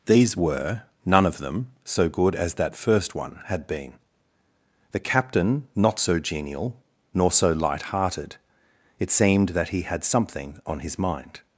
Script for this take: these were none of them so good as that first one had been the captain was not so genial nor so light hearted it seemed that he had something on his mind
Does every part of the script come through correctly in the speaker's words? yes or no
no